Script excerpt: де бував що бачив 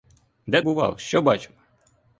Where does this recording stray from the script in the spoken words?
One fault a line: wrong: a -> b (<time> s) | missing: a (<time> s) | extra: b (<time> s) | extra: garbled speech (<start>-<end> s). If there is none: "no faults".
no faults